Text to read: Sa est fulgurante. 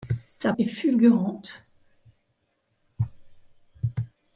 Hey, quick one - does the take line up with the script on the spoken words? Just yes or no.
yes